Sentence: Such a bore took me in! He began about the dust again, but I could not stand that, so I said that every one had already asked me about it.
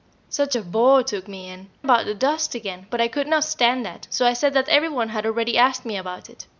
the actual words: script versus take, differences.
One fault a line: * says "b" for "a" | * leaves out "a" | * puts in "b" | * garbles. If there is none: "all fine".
* leaves out "He began"